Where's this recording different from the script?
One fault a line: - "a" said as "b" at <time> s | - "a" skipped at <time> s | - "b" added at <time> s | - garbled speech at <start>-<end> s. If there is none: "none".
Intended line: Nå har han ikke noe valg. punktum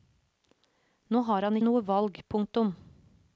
- "ikke" skipped at 1.6 s